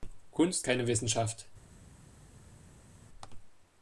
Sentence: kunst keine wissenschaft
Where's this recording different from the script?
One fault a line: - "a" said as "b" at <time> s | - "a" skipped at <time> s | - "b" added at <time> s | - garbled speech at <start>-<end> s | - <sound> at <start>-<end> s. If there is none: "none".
none